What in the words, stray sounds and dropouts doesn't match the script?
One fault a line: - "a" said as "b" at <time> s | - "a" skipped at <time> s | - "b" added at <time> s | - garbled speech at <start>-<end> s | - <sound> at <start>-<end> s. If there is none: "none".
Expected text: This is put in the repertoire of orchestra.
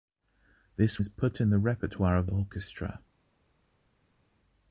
none